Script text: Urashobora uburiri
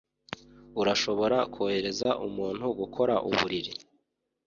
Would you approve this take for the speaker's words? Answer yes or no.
no